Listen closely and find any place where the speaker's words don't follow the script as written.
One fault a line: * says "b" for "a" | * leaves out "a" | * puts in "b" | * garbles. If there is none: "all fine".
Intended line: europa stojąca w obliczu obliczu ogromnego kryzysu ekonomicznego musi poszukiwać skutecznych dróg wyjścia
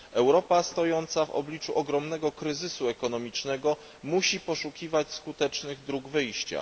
* leaves out "obliczu"